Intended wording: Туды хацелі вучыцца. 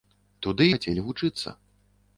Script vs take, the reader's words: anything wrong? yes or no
no